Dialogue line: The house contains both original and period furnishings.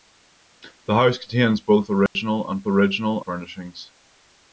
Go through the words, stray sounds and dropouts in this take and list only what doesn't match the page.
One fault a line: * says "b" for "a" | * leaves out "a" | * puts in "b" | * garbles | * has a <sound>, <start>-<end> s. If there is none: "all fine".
* has a dropout, 2.1-2.2 s
* says "original" for "period"